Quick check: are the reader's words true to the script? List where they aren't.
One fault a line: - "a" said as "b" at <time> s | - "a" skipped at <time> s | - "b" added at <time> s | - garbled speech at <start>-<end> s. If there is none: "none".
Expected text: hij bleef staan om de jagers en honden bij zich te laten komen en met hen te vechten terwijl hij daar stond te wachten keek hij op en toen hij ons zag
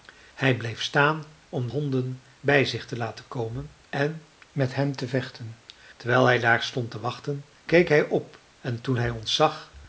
- "de jagers en" skipped at 1.7 s